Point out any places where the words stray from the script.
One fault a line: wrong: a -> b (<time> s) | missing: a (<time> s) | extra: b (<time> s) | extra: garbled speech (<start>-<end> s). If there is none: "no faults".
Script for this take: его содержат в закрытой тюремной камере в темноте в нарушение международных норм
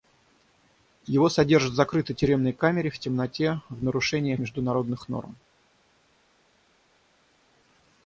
no faults